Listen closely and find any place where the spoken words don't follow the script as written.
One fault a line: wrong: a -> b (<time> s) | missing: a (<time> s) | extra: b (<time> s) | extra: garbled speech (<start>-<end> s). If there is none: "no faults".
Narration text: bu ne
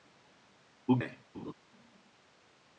no faults